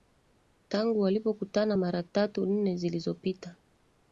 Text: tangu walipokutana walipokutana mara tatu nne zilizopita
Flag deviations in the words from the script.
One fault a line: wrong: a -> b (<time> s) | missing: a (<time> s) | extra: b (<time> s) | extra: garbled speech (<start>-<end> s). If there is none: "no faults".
missing: walipokutana (1.8 s)